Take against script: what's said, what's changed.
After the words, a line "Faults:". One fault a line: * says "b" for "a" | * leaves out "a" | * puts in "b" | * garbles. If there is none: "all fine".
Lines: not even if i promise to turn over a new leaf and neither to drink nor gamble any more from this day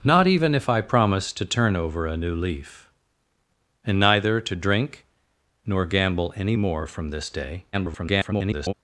not even if i promise to turn over a new leaf and neither to drink nor gamble any more from this day [garbled]
Faults:
* garbles